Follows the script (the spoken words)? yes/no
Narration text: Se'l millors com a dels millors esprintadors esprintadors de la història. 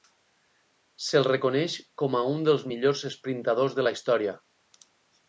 no